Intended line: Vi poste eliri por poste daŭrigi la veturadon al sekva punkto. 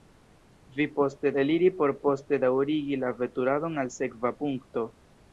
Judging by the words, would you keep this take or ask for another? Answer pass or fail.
pass